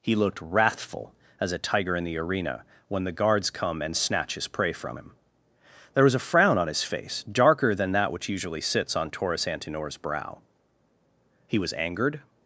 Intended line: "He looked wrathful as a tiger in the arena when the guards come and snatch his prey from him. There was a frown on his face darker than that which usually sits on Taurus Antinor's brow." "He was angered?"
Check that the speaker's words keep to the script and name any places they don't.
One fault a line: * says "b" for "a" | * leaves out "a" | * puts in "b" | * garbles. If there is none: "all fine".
all fine